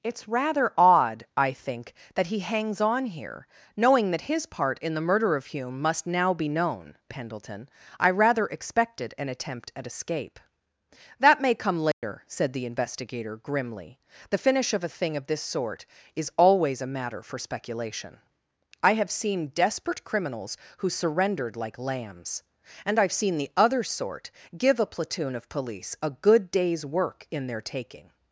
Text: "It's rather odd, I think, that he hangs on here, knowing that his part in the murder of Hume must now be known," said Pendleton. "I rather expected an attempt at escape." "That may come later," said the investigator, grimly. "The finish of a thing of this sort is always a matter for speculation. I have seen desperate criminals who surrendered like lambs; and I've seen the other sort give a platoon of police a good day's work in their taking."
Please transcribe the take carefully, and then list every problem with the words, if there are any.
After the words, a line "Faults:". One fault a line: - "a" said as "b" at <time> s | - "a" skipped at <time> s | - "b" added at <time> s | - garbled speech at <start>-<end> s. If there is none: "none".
"It's rather odd, I think, that he hangs on here, knowing that his part in the murder of Hume must now be known," Pendleton. "I rather expected an attempt at escape." "That may come later," said the investigator, grimly. "The finish of a thing of this sort is always a matter for speculation. I have seen desperate criminals who surrendered like lambs; and I've seen the other sort give a platoon of police a good day's work in their taking."
Faults:
- "said" skipped at 7.0 s